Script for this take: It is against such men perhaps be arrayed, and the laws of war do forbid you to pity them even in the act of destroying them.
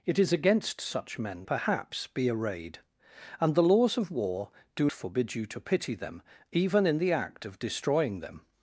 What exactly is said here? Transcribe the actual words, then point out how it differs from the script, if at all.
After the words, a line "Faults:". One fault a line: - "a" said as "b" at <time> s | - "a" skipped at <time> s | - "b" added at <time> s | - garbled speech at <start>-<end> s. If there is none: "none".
It is against such men perhaps be arrayed, and the laws of war do forbid you to pity them even in the act of destroying them.
Faults:
none